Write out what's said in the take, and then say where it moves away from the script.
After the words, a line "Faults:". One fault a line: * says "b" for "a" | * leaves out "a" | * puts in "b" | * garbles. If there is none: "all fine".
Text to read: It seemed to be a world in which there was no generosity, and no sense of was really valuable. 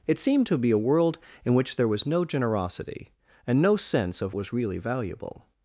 It seemed to be a world in which there was no generosity, and no sense of was really valuable.
Faults:
all fine